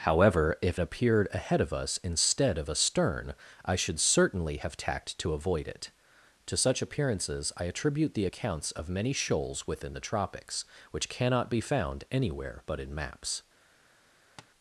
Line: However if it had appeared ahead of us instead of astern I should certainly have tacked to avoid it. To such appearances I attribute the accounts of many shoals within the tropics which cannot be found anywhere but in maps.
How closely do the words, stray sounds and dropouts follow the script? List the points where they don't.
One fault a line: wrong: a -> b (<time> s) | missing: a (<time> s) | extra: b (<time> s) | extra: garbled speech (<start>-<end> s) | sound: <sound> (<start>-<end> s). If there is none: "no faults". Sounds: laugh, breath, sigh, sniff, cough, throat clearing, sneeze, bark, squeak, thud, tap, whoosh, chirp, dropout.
missing: it had (0.8 s)
sound: tap (14.4-14.5 s)